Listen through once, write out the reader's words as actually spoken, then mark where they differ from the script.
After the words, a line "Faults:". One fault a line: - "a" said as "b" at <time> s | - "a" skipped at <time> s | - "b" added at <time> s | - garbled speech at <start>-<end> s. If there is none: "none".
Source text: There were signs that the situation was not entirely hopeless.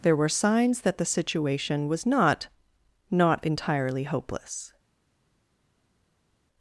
There were signs that the situation was not not entirely hopeless.
Faults:
- "not" added at 3.1 s